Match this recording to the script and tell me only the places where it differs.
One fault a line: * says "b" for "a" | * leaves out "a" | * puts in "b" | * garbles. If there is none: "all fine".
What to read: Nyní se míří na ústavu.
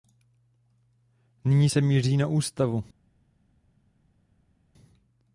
all fine